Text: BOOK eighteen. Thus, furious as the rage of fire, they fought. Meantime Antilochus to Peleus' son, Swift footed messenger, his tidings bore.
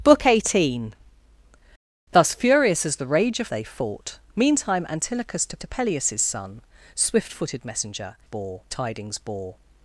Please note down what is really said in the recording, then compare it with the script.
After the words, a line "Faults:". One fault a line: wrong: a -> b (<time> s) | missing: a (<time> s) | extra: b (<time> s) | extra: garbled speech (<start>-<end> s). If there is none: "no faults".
BOOK eighteen. Thus, furious as the rage of they fought. Meantime Antilochus to to Peleus' son, Swift footed messenger, bore tidings bore.
Faults:
missing: fire (3.5 s)
extra: to (5.6 s)
wrong: his -> bore (8.2 s)